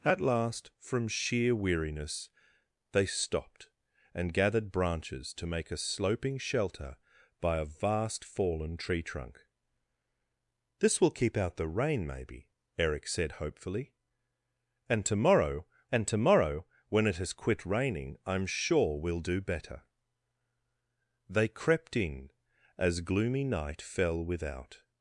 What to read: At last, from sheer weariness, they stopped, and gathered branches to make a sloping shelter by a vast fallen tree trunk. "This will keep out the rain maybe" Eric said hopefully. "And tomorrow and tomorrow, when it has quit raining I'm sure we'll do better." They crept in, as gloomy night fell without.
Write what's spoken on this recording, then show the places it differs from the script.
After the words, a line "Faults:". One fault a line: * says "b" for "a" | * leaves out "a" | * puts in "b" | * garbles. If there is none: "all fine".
At last, from sheer weariness, they stopped, and gathered branches to make a sloping shelter by a vast fallen tree trunk. "This will keep out the rain maybe" Eric said hopefully. "And tomorrow and tomorrow, when it has quit raining I'm sure we'll do better." They crept in, as gloomy night fell without.
Faults:
all fine